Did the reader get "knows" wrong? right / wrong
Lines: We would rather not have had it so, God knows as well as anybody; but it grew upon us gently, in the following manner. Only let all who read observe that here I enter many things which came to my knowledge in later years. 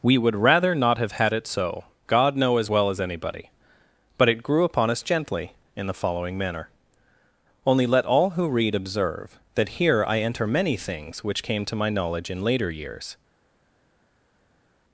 wrong